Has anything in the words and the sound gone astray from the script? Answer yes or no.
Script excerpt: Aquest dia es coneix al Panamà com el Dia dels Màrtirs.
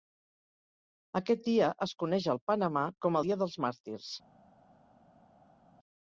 yes